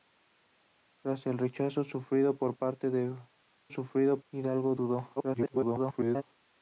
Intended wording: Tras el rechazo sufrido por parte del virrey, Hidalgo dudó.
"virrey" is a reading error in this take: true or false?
true